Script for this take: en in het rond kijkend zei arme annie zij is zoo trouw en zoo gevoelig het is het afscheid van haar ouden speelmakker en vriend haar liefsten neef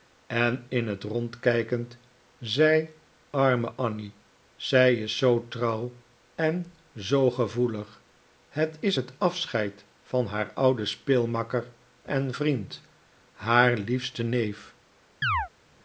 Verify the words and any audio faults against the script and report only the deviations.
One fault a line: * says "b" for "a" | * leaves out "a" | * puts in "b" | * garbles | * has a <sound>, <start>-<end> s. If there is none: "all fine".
* has a chirp, 15.2-15.5 s